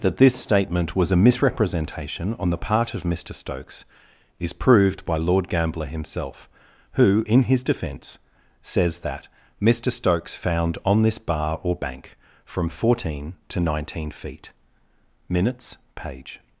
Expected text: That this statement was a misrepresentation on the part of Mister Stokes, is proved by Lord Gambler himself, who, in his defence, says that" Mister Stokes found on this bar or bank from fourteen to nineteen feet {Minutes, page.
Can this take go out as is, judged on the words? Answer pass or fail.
pass